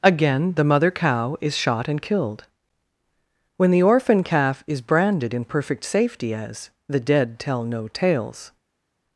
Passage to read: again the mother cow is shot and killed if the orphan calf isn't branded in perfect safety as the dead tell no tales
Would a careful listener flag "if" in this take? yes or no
yes